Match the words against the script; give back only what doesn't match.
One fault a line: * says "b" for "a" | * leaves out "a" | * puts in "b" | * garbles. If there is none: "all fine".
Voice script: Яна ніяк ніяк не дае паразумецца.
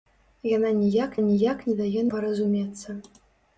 all fine